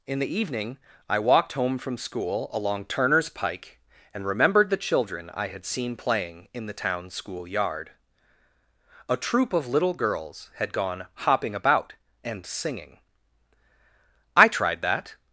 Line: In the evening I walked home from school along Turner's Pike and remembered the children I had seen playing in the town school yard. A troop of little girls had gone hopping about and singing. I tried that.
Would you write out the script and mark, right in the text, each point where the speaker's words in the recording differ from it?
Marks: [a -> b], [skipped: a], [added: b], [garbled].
In the evening I walked home from school along Turner's Pike and remembered the children I had seen playing in the town school yard. A troop of little girls had gone hopping about and singing. I tried that.